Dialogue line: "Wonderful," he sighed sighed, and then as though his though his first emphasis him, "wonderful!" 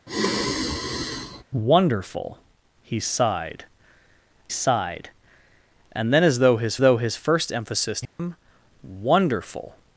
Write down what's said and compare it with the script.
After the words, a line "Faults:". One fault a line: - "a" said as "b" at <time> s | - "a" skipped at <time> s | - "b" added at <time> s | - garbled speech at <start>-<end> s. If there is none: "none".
"Wonderful," he sighed sighed, and then as though his though his first emphasis him, "wonderful!"
Faults:
none